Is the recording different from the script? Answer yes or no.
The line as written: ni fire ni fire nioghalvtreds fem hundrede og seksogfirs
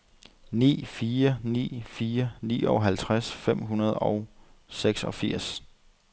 no